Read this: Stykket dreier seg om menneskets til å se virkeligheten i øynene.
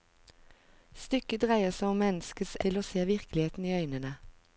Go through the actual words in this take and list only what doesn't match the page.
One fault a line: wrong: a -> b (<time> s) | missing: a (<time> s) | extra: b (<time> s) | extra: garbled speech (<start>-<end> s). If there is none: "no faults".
no faults